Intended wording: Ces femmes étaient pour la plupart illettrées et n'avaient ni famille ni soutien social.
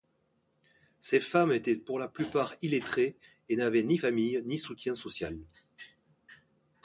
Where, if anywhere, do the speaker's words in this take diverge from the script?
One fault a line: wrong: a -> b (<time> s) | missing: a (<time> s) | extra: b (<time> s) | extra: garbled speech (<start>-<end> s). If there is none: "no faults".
no faults